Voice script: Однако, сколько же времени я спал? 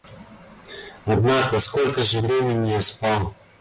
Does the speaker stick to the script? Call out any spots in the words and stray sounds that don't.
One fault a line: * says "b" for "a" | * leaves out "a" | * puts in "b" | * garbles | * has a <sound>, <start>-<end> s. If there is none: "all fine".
all fine